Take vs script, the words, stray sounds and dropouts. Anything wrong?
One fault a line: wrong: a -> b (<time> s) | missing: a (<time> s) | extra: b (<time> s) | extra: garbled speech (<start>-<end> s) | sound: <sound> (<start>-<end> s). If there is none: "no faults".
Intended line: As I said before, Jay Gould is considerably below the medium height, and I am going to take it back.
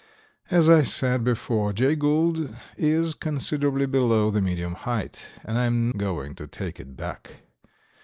no faults